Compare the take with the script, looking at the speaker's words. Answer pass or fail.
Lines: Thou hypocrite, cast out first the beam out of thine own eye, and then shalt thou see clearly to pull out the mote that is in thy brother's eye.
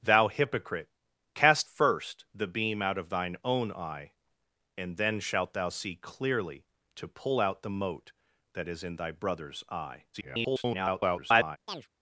fail